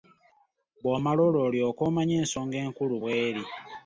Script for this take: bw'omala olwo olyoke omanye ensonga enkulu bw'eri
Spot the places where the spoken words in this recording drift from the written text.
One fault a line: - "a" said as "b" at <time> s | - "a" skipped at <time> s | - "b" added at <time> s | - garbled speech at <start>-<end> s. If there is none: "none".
none